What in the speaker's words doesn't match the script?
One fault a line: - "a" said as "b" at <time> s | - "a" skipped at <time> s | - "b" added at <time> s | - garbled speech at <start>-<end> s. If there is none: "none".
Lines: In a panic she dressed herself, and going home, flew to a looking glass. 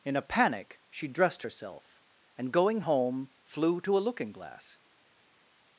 none